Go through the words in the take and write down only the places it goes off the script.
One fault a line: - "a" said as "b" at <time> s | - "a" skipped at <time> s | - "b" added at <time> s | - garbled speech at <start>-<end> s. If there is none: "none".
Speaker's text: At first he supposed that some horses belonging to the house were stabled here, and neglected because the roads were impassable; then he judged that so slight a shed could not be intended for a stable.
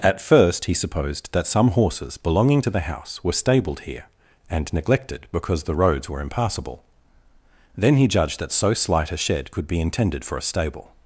- "not" skipped at 9.7 s